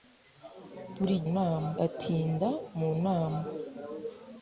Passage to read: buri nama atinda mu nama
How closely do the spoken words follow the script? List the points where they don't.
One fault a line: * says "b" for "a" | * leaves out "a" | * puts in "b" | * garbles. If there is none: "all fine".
all fine